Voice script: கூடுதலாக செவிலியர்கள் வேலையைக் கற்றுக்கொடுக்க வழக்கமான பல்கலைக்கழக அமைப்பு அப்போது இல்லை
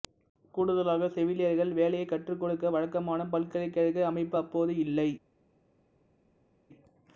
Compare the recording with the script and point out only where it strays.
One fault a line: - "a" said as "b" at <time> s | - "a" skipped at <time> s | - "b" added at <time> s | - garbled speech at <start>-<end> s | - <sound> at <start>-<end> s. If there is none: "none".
none